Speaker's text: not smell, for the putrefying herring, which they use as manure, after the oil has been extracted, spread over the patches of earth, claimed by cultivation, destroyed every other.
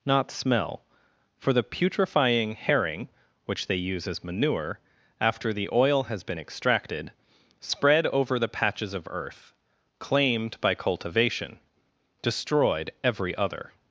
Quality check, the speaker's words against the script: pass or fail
pass